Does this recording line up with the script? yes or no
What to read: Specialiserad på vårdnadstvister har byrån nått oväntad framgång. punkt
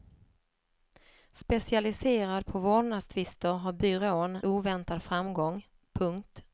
no